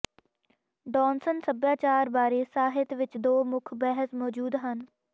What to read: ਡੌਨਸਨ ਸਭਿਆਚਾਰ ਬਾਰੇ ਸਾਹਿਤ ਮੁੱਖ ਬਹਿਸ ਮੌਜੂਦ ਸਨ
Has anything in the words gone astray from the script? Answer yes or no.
yes